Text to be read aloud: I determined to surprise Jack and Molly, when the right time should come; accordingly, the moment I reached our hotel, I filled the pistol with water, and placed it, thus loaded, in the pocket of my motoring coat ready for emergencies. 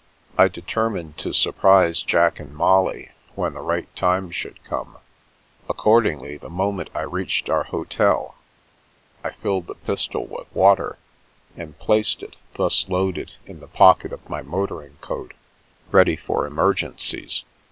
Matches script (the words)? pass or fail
pass